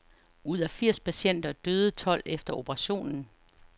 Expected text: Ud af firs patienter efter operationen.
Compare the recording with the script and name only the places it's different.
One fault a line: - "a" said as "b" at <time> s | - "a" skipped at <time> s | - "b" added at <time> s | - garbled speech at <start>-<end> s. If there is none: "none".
- "døde tolv" added at 1.5 s